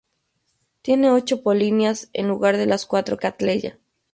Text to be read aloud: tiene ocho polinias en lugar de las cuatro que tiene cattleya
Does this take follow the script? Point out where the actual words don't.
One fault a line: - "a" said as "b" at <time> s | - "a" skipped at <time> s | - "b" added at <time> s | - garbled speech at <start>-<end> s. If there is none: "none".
- "que tiene" skipped at 3.2 s